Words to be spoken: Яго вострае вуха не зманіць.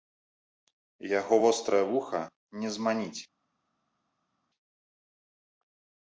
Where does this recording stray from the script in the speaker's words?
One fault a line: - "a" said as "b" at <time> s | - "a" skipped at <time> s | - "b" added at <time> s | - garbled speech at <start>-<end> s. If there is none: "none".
none